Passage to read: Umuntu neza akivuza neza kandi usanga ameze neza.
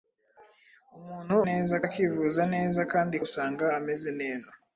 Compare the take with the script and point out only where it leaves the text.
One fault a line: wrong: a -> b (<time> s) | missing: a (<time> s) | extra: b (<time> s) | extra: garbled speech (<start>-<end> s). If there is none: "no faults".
no faults